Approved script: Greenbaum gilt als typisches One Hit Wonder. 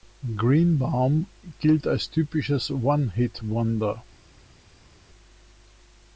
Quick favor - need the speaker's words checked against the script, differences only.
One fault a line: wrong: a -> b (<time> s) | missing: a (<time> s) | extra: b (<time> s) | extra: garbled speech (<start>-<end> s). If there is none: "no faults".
no faults